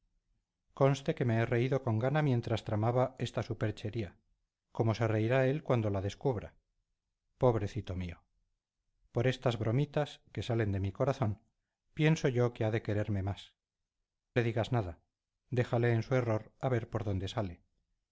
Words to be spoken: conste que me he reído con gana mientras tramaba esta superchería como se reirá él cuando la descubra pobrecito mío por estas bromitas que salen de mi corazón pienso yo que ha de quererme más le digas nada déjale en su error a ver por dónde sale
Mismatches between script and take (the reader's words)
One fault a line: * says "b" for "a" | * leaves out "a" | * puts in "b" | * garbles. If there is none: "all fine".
all fine